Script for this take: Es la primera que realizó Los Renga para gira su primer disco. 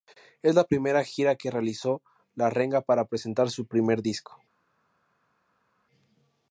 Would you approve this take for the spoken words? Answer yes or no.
no